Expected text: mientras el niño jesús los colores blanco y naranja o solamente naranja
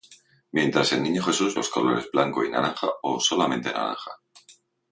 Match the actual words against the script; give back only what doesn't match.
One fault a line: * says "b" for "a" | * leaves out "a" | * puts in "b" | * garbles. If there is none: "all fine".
all fine